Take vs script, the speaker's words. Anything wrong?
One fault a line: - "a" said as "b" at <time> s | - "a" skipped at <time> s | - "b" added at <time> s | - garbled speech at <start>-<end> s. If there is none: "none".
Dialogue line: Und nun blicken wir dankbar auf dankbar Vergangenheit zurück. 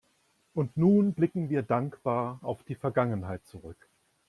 - "dankbar" said as "die" at 2.6 s